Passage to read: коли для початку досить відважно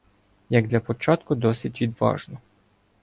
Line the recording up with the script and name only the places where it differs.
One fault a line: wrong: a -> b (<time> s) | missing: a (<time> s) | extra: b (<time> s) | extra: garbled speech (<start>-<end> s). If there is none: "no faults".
wrong: коли -> як (0.5 s)